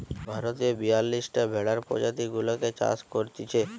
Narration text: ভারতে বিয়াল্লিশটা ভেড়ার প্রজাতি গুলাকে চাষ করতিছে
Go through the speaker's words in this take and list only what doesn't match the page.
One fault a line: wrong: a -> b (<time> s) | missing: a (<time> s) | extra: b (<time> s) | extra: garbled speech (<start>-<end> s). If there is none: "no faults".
no faults